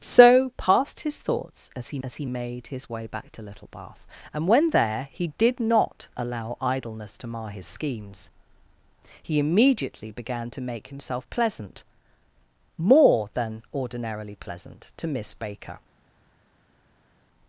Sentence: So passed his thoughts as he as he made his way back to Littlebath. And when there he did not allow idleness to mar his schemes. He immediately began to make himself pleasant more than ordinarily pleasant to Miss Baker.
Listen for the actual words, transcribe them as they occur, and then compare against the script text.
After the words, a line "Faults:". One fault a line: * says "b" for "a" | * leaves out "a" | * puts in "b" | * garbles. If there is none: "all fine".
So passed his thoughts as he as he made his way back to Littlebath. And when there he did not allow idleness to mar his schemes. He immediately began to make himself pleasant more than ordinarily pleasant to Miss Baker.
Faults:
all fine